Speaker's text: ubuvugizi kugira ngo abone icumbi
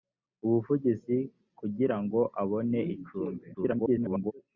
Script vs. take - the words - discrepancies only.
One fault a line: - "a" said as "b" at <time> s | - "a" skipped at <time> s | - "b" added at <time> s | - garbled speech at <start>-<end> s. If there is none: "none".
- garbled speech at 3.5-4.3 s